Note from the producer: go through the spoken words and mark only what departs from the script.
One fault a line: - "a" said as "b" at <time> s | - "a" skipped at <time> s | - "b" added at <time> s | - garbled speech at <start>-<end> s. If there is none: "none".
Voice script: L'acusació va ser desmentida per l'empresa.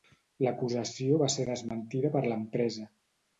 none